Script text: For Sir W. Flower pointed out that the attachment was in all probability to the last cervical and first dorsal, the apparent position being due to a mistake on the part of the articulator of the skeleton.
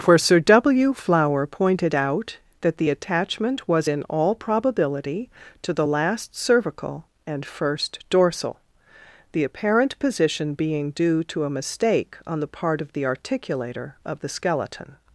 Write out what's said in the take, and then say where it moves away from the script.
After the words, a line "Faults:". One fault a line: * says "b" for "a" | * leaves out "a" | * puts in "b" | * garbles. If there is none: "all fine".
For Sir W. Flower pointed out that the attachment was in all probability to the last cervical and first dorsal, the apparent position being due to a mistake on the part of the articulator of the skeleton.
Faults:
all fine